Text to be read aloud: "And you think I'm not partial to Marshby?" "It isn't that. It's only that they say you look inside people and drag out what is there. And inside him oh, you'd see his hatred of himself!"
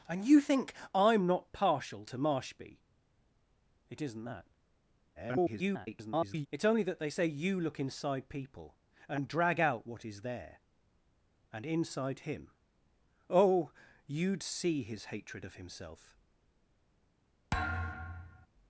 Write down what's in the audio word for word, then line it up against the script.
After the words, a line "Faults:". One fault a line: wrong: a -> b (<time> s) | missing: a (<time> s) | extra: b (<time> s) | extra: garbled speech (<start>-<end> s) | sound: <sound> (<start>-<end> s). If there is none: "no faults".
"And you think I'm not partial to Marshby?" "It isn't that. [garbled] It's only that they say you look inside people and drag out what is there. And inside him oh, you'd see his hatred of himself!"
Faults:
extra: garbled speech (5.2-6.5 s)
sound: thud (17.5-18.5 s)